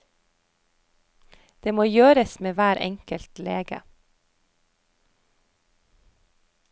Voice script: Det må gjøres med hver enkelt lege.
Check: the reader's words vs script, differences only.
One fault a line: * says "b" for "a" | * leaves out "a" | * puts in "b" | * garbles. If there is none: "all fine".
all fine